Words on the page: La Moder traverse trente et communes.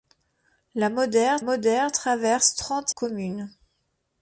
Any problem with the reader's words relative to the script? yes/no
yes